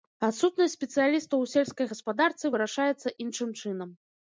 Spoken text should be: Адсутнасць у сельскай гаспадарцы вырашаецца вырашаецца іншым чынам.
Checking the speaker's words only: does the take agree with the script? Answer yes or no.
no